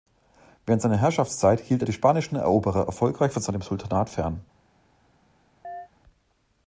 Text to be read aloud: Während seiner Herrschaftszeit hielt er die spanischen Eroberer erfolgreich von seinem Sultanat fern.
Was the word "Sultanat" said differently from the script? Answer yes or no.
no